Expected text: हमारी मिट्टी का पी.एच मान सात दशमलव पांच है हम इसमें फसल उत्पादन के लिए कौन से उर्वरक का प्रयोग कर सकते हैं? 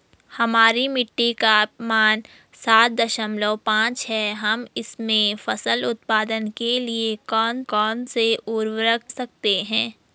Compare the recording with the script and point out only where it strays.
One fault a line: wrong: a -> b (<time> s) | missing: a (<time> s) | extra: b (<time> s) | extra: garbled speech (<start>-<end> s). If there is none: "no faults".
missing: पी.एच (1.6 s)
extra: कौन (7.7 s)
missing: का प्रयोग कर (9.0 s)